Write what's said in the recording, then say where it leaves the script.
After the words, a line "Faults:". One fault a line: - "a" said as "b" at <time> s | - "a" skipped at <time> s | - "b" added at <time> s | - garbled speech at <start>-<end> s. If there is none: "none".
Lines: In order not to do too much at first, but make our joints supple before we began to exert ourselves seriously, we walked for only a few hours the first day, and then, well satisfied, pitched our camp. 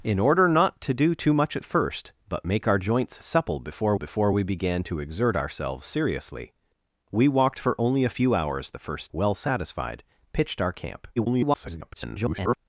In order not to do too much at first, but make our joints supple before before we began to exert ourselves seriously, we walked for only a few hours the first well satisfied, pitched our camp. [garbled]
Faults:
- "before" added at 3.9 s
- "day and then" skipped at 9.1 s
- garbled speech at 11.2-12.6 s